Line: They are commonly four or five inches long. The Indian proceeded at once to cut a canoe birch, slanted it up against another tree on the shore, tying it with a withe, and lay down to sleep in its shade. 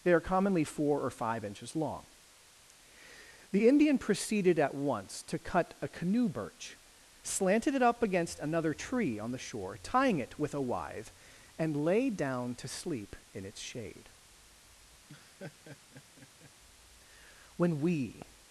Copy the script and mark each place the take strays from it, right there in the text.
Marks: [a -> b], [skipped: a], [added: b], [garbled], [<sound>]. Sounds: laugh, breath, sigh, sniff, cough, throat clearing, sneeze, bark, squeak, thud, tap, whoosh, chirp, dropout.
They are commonly four or five inches long. The Indian proceeded at once to cut a canoe birch, slanted it up against another tree on the shore, tying it with a withe, and lay down to sleep in its shade. [laugh] [added: When we]